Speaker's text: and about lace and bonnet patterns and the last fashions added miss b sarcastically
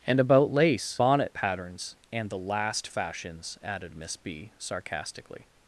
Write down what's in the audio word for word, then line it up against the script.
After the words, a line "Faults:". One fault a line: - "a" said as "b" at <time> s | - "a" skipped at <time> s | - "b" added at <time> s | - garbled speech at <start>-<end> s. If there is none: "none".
and about lace bonnet patterns and the last fashions added miss b sarcastically
Faults:
- "and" skipped at 1.0 s